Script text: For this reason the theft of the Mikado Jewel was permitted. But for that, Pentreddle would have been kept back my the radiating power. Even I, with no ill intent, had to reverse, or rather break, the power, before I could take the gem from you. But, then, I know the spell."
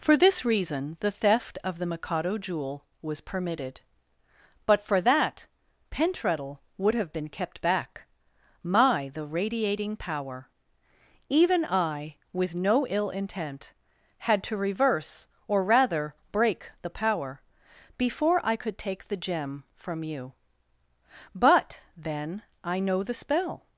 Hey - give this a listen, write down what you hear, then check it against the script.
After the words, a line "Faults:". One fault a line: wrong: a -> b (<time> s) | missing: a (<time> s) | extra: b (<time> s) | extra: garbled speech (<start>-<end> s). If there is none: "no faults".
For this reason the theft of the Mikado Jewel was permitted. But for that, Pentreddle would have been kept back my the radiating power. Even I, with no ill intent, had to reverse, or rather break, the power, before I could take the gem from you. But, then, I know the spell."
Faults:
no faults